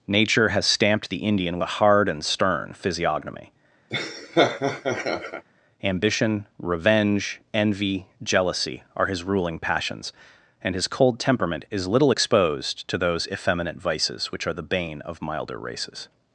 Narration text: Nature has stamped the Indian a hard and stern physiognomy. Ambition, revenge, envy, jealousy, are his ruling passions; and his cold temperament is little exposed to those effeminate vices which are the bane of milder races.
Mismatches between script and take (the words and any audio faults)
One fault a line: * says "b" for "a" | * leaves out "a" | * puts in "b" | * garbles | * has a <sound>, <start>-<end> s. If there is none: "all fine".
* has a laugh, 3.9-5.4 s